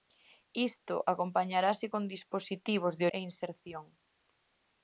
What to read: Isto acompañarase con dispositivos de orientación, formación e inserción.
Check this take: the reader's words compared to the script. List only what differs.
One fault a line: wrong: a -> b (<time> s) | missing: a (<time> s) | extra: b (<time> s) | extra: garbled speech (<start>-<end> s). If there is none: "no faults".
missing: orientación formación (3.0 s)